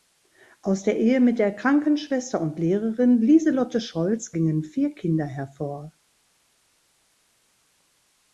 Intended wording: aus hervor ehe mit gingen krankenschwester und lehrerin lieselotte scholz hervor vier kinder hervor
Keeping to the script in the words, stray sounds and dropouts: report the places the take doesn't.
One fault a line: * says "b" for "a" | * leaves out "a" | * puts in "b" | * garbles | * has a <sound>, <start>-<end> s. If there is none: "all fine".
* says "der" for "hervor"
* says "der" for "gingen"
* says "gingen" for "hervor"